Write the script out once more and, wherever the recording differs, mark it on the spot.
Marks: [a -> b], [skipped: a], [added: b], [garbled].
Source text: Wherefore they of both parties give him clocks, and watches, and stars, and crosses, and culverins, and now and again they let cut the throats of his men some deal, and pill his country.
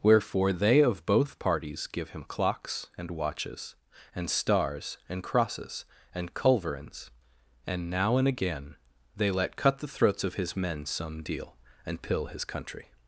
Wherefore they of both parties give him clocks, and watches, and stars, and crosses, and culverins, and now and again they let cut the throats of his men some deal, and pill his country.